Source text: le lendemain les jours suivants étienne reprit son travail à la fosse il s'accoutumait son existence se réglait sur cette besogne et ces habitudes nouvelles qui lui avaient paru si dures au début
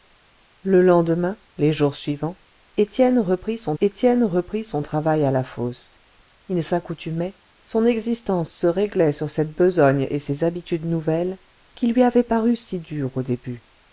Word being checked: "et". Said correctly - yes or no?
yes